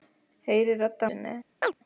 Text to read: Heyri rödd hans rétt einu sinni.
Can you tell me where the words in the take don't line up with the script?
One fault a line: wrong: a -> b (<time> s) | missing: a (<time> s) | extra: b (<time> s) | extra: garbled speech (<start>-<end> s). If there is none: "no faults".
missing: hans rétt einu (1.1 s)